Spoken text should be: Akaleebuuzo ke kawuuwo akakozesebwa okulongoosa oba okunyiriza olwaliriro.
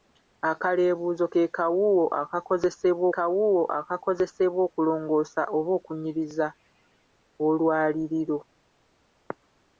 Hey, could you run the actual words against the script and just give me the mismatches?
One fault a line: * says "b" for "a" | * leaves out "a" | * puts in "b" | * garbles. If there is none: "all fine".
* puts in "kawuuwo akakozesebwa"